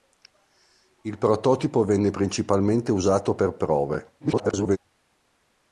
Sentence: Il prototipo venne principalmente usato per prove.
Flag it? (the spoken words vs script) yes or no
yes